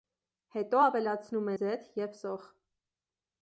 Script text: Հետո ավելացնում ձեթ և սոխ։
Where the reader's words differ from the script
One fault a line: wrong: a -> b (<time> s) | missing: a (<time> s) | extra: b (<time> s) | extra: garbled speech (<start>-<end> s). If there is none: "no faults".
no faults